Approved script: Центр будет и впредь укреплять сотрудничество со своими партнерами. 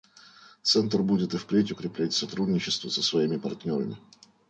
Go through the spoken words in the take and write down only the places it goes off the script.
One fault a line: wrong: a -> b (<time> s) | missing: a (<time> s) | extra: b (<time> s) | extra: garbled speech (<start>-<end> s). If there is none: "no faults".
no faults